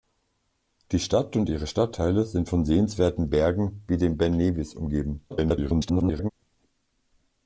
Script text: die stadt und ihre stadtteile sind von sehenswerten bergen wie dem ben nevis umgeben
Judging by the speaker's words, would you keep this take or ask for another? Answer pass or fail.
fail